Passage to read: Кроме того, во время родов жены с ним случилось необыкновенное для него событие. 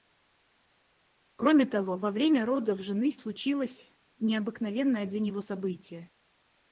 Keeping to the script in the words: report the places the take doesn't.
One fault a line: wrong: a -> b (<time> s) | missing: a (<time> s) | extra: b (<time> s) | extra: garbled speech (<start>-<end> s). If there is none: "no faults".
missing: ним (3.2 s)